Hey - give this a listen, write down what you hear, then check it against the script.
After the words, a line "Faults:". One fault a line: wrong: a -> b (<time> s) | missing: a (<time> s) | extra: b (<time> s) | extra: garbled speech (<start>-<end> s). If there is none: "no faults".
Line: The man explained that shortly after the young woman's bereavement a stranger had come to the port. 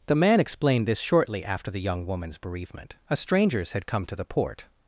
The man explained this shortly after the young woman's bereavement a strangers had come to the port.
Faults:
wrong: that -> this (0.9 s)
wrong: stranger -> strangers (3.1 s)